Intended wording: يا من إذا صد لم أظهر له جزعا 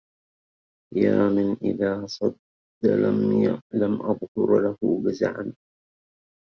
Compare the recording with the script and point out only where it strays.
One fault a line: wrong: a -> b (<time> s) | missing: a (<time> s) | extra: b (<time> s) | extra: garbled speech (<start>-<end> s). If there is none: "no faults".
no faults